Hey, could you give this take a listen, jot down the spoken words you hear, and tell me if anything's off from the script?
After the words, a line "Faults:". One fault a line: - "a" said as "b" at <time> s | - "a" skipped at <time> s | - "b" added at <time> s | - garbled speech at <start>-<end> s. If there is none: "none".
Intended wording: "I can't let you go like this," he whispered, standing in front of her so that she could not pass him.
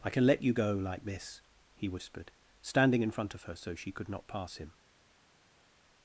"I can let you go like this," he whispered, standing in front of her so she could not pass him.
Faults:
- "can't" said as "can" at 0.1 s
- "that" skipped at 3.7 s